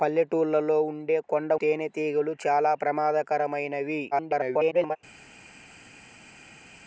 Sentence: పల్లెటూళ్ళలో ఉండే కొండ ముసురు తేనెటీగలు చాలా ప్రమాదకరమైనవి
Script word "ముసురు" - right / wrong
wrong